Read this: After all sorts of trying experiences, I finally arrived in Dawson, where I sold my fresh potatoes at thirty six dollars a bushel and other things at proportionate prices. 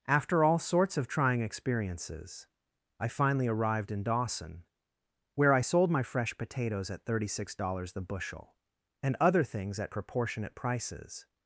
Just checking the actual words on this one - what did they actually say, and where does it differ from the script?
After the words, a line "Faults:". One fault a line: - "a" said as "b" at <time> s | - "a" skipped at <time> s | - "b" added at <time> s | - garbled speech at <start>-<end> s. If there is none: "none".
After all sorts of trying experiences, I finally arrived in Dawson, where I sold my fresh potatoes at thirty six dollars the bushel and other things at proportionate prices.
Faults:
- "a" said as "the" at 7.9 s